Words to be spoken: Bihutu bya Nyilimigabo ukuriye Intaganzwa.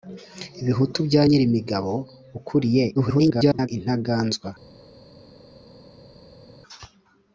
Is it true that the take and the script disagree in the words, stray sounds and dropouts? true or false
true